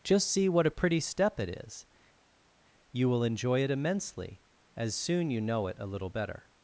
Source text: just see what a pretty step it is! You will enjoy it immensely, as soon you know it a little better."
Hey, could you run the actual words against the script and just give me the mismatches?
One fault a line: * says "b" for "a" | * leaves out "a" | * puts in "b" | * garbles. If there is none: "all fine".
all fine